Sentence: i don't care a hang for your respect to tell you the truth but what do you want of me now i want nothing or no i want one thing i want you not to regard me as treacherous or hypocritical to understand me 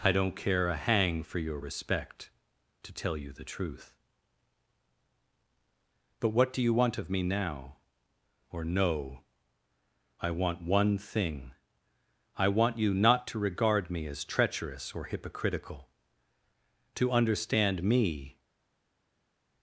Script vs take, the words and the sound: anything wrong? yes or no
yes